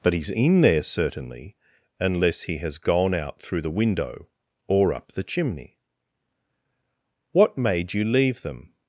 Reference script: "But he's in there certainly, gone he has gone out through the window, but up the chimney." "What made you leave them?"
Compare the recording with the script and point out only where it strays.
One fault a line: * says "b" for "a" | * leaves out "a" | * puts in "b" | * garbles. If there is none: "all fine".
* says "unless" for "gone"
* says "or" for "but"